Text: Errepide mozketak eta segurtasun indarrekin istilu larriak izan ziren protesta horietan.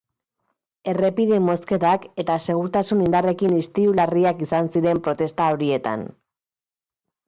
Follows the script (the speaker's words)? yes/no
yes